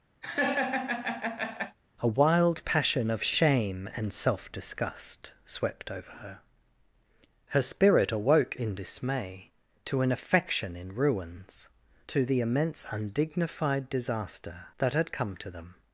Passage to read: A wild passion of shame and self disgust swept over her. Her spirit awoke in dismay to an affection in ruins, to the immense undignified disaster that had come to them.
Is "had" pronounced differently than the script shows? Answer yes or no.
no